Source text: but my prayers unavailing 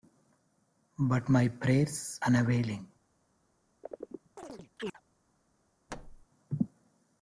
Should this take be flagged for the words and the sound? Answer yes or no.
yes